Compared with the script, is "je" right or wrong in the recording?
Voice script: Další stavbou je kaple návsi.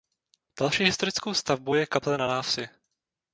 right